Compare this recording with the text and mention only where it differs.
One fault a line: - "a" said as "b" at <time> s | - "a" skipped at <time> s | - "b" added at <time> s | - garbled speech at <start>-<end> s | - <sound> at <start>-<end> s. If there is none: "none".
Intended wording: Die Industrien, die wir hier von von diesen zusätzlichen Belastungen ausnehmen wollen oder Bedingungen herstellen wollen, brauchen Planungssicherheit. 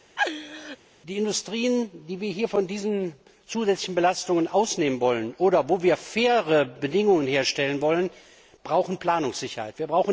- laugh at 0.2-0.8 s
- "von" skipped at 2.7 s
- "wo wir faire" added at 5.7 s